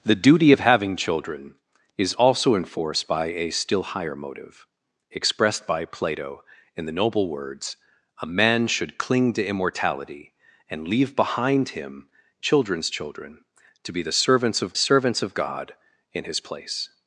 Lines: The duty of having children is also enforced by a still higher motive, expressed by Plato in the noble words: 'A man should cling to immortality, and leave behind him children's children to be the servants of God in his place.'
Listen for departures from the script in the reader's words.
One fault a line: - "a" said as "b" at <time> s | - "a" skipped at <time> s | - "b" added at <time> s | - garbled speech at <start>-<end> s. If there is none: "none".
- "servants of" added at 14.8 s